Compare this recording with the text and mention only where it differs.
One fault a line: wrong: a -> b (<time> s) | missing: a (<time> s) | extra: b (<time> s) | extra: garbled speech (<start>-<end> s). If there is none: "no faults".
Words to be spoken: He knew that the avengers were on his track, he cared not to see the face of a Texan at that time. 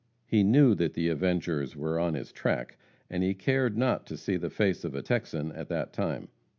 extra: and (3.1 s)